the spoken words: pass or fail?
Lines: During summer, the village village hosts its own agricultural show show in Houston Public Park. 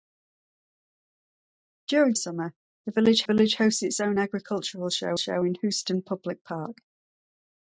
pass